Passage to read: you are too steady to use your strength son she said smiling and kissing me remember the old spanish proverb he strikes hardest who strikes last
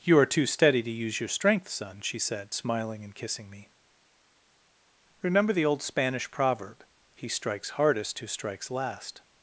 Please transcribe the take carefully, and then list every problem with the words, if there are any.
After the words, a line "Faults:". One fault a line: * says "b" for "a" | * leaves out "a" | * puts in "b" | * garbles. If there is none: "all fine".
you are too steady to use your strength son she said smiling and kissing me remember the old spanish proverb he strikes hardest who strikes last
Faults:
all fine